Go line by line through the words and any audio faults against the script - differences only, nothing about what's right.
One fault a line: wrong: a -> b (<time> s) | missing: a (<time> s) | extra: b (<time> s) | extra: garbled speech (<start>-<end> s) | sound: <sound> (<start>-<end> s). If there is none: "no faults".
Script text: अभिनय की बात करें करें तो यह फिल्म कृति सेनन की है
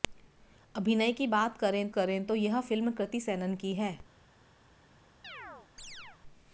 sound: chirp (5.2-6.2 s)